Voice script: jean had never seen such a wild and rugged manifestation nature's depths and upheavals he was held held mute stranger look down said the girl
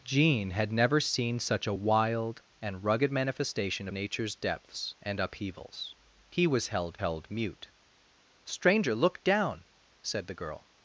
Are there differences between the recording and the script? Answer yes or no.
no